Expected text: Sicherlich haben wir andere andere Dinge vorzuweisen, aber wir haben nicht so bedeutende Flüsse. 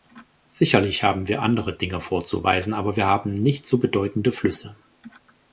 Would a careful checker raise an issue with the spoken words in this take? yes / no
yes